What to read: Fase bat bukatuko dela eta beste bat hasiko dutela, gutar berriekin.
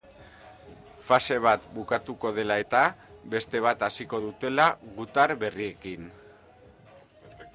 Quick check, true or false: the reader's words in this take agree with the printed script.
true